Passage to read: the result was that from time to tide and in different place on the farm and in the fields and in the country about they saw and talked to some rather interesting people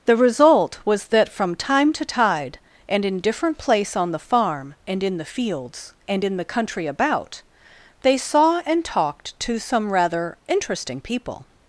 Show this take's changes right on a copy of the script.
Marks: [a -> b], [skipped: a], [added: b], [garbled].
the result was that from time to tide and in different place on the farm and in the fields and in the country about they saw and talked to some rather interesting people